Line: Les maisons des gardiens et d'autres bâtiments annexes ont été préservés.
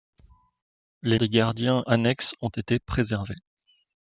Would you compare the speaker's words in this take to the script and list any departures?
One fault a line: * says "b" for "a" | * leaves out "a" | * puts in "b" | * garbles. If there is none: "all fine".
* leaves out "maisons"
* leaves out "et d'autres bâtiments"